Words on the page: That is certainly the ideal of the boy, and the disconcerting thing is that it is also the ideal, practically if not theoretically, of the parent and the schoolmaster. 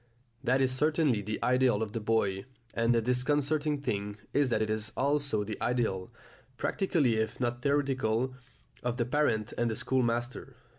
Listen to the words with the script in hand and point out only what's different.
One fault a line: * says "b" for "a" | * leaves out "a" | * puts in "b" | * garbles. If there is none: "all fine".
all fine